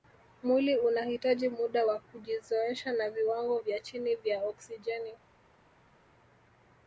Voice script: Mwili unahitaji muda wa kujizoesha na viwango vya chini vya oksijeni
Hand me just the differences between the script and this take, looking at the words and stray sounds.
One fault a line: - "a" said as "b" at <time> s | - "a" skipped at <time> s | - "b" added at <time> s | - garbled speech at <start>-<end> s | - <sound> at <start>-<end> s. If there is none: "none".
none